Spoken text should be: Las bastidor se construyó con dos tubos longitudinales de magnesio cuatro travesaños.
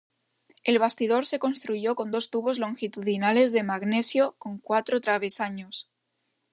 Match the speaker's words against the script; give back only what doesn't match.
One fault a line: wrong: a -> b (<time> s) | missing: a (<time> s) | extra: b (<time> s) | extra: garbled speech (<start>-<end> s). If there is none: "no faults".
wrong: Las -> El (0.6 s)
extra: con (4.4 s)